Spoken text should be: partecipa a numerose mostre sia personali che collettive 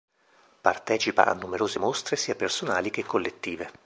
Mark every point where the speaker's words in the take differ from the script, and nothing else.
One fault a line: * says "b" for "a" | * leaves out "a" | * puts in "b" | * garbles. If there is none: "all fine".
all fine